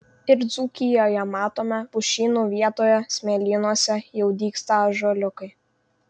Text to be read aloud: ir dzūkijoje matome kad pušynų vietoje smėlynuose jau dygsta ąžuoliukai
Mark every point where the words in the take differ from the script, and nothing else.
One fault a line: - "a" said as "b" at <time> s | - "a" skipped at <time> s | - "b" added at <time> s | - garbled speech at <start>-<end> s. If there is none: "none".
- "kad" skipped at 1.8 s